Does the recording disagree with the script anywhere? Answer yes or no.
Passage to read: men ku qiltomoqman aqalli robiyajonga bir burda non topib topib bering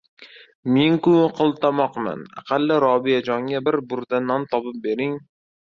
yes